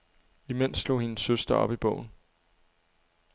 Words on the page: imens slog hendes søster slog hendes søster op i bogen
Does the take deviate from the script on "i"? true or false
false